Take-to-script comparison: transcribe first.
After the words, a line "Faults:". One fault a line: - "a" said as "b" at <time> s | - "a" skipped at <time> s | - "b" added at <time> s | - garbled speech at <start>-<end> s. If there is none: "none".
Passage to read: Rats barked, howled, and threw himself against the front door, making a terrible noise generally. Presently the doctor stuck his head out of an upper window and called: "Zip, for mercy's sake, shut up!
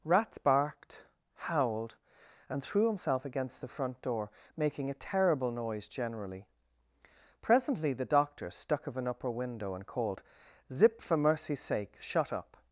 Rats barked, howled, and threw himself against the front door, making a terrible noise generally. Presently the doctor stuck of an upper window and called: "Zip, for mercy's sake, shut up!
Faults:
- "his head out" skipped at 8.9 s